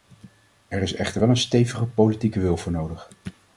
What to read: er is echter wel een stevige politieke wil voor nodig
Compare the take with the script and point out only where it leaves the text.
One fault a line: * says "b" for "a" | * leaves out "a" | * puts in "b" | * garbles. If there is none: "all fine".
all fine